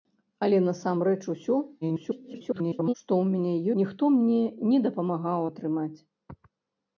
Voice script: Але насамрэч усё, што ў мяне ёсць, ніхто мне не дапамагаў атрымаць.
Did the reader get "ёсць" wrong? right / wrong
wrong